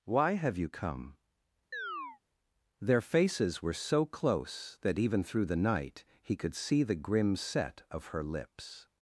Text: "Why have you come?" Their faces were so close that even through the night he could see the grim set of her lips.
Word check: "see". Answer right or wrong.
right